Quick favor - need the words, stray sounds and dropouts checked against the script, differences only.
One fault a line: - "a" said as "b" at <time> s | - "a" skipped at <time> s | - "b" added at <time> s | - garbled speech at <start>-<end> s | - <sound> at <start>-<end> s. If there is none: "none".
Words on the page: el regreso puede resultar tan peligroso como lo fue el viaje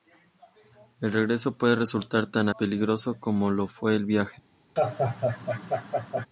- laugh at 4.8-6.3 s